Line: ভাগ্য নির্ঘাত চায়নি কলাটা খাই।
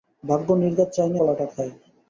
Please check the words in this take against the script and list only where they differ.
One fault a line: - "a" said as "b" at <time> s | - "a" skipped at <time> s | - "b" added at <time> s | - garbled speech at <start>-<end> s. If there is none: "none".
none